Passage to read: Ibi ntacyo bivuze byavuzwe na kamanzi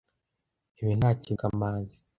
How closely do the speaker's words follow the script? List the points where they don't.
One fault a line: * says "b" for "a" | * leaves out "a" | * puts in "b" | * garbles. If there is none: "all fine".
* leaves out "bivuze byavuzwe na"